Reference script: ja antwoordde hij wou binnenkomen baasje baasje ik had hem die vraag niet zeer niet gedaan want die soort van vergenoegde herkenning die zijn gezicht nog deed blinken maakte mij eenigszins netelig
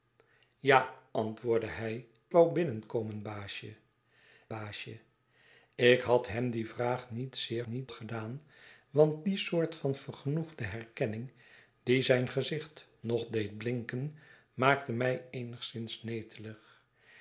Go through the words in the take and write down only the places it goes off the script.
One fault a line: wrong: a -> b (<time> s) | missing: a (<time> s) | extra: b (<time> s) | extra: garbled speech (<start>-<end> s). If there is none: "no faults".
no faults